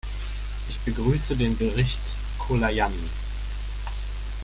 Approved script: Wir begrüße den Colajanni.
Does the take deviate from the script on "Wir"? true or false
true